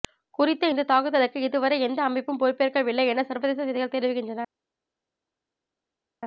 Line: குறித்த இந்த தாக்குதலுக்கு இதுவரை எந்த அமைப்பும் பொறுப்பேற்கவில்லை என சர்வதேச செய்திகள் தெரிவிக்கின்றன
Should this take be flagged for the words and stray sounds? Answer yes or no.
no